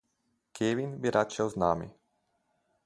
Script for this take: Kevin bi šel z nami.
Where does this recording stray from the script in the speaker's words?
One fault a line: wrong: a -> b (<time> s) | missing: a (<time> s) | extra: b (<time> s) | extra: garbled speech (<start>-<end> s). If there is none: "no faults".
extra: rad (1.1 s)